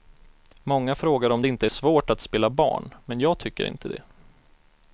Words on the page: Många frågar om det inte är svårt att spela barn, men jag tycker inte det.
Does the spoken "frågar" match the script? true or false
true